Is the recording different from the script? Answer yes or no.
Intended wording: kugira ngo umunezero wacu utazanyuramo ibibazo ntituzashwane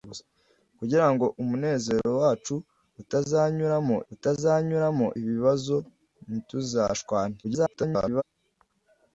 yes